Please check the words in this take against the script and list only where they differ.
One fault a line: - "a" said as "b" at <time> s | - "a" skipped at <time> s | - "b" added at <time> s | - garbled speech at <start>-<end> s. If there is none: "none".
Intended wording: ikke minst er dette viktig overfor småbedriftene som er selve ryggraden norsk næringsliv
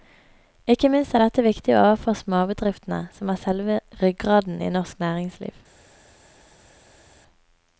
- "i" added at 4.6 s